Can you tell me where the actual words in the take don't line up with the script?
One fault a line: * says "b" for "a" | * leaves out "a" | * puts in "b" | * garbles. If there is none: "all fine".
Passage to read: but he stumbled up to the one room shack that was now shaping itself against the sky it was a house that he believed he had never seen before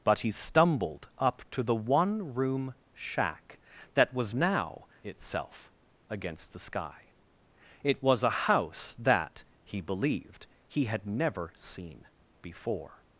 * leaves out "shaping"